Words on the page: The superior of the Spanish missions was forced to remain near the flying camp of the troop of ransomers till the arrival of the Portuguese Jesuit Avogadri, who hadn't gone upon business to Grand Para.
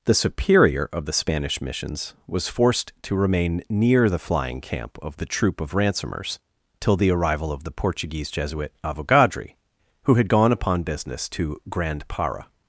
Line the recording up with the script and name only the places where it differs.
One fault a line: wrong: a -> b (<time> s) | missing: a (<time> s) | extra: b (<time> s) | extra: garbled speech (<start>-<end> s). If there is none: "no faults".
wrong: hadn't -> had (10.2 s)